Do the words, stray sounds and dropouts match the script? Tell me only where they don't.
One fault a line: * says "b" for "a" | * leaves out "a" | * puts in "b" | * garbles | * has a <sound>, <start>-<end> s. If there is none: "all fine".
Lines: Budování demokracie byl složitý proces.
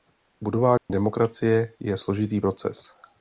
* has a dropout, 0.8-0.9 s
* says "je" for "byl"